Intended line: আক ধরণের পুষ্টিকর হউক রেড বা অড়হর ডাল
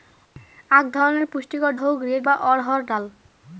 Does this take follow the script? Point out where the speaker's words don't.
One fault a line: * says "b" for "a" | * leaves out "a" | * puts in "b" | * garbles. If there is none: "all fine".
all fine